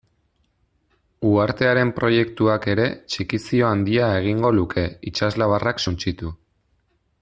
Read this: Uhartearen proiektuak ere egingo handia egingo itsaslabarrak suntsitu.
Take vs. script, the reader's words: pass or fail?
fail